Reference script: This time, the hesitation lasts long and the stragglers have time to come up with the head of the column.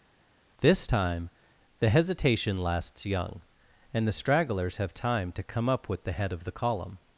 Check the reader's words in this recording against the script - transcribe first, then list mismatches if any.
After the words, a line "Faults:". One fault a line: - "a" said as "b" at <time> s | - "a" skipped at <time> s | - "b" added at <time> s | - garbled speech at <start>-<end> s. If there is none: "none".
This time, the hesitation lasts young and the stragglers have time to come up with the head of the column.
Faults:
- "long" said as "young" at 3.1 s